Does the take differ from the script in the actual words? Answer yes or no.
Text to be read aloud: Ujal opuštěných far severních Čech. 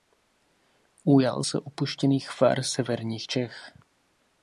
yes